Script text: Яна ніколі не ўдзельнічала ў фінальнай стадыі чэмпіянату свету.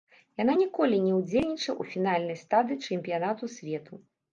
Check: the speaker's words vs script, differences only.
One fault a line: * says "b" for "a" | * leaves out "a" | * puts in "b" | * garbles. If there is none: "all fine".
all fine